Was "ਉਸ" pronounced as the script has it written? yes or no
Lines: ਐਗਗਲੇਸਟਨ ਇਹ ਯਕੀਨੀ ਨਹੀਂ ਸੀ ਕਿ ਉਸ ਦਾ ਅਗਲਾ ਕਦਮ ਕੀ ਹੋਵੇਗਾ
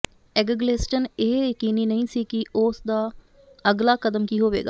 yes